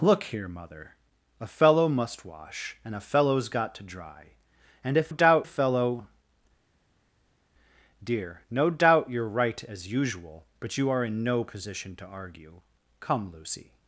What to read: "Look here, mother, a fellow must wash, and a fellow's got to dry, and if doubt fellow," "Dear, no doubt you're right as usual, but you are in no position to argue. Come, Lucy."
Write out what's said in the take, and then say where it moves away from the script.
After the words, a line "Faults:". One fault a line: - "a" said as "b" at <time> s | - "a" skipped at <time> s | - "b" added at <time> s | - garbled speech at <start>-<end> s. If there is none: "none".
"Look here, mother, a fellow must wash, and a fellow's got to dry, and if doubt fellow," "Dear, no doubt you're right as usual, but you are in no position to argue. Come, Lucy."
Faults:
none